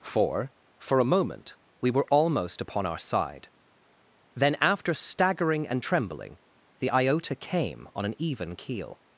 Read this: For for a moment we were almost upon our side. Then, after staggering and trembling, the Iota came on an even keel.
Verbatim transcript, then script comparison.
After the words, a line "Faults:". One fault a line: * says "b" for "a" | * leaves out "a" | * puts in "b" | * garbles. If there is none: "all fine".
For for a moment we were almost upon our side. Then, after staggering and trembling, the Iota came on an even keel.
Faults:
all fine